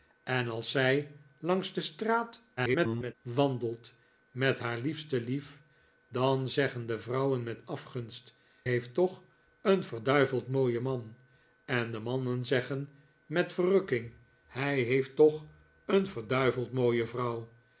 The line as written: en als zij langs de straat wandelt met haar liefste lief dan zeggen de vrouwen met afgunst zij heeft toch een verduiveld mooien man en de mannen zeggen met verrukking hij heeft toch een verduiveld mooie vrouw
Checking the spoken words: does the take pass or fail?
fail